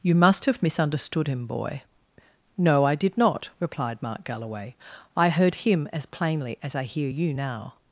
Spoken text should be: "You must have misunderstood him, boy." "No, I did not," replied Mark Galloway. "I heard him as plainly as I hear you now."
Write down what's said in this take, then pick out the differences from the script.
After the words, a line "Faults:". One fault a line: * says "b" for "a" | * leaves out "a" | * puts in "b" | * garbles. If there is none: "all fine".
"You must have misunderstood him, boy." "No, I did not," replied Mark Galloway. "I heard him as plainly as I hear you now."
Faults:
all fine